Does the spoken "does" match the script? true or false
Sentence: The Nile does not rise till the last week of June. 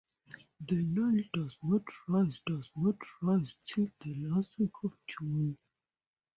true